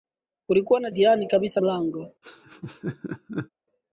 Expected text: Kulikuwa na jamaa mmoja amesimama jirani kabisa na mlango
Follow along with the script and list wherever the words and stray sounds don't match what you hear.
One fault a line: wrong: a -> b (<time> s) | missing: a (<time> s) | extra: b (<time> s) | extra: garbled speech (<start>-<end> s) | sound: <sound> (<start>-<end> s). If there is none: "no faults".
missing: jamaa mmoja amesimama (0.9 s)
missing: na (1.6 s)
sound: laugh (2.2-3.5 s)